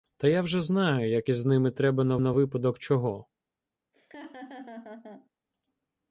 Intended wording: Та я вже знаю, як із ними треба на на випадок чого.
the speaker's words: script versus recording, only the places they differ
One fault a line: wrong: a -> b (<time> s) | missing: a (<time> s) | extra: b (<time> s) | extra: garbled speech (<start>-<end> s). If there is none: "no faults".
no faults